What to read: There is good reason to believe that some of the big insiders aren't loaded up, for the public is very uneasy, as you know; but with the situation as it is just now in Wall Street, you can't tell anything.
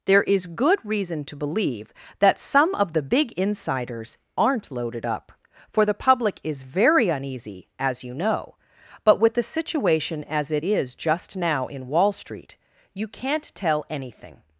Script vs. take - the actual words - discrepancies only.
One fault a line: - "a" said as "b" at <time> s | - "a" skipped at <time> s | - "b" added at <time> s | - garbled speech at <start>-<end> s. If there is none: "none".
none